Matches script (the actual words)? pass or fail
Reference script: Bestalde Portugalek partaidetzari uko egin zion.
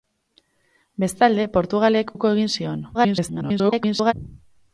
fail